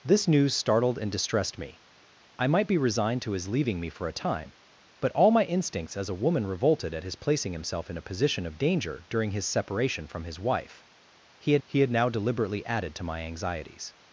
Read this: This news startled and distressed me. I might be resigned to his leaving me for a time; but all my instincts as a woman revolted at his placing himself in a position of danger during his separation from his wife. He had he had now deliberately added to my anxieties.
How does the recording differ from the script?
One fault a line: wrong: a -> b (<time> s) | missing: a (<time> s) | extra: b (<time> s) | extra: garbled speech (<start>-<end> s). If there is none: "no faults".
no faults